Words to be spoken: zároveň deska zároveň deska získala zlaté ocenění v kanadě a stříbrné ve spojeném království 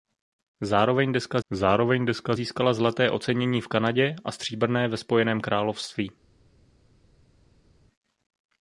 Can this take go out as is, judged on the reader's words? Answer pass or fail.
pass